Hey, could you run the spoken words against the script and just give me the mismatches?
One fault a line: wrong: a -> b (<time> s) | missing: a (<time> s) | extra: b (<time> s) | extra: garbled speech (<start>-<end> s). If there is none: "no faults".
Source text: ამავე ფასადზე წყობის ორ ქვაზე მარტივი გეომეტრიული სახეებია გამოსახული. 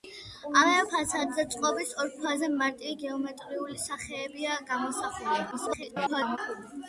extra: garbled speech (5.5-6.4 s)